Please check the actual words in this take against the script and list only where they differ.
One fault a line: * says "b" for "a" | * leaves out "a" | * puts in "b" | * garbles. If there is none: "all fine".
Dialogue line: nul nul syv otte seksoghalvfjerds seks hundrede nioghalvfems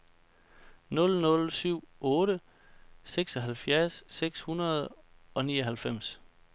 * puts in "og"